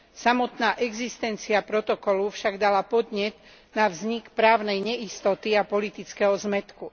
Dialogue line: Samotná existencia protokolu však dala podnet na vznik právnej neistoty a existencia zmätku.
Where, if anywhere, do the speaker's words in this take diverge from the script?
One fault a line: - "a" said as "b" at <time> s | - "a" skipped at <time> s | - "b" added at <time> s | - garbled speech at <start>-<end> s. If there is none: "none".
- "existencia" said as "politického" at 5.6 s